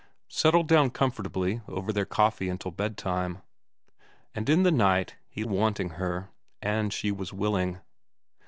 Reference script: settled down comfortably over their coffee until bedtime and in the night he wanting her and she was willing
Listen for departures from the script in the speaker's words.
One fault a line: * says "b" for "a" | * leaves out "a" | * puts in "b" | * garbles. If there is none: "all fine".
all fine